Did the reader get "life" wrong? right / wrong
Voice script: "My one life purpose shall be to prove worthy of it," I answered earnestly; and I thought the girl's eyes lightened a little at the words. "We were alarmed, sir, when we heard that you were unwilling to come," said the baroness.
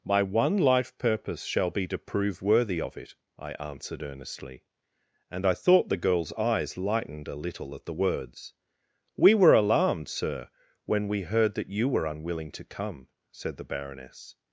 right